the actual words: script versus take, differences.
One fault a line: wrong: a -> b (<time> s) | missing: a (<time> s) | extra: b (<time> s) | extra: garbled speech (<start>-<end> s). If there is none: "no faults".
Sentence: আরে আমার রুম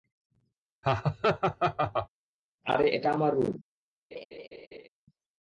extra: এটা (2.9 s)